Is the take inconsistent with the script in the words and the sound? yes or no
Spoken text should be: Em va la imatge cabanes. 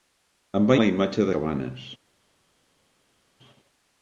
no